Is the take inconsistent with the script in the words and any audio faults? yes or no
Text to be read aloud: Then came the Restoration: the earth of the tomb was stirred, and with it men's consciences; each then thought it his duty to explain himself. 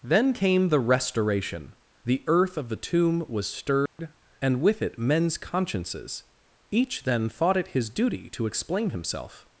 yes